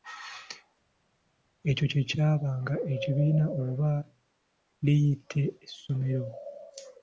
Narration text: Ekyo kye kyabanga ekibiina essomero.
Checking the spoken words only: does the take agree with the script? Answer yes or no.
no